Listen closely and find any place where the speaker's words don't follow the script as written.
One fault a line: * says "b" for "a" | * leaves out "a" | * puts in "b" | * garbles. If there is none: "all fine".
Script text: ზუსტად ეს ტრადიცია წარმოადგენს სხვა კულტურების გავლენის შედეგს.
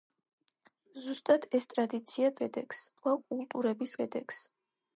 * says "შედეგს" for "წარმოადგენს"
* leaves out "გავლენის"